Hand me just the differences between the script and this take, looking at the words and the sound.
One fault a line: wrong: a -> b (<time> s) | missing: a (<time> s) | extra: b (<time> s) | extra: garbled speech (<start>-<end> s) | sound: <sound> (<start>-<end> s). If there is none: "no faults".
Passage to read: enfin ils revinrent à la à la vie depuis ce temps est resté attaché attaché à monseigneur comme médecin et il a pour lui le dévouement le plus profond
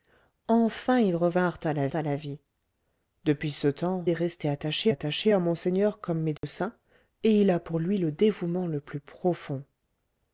sound: dropout (6.4-6.4 s)